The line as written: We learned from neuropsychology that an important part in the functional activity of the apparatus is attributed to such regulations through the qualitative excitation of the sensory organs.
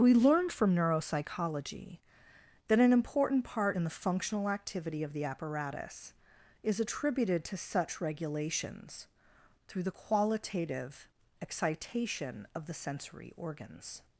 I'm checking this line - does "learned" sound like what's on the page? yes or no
yes